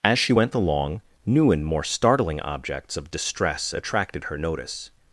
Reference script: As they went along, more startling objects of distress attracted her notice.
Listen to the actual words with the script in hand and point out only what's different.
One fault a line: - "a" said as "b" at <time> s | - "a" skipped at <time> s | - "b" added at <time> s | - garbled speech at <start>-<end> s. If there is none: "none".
- "they" said as "she" at 0.2 s
- "new and" added at 1.2 s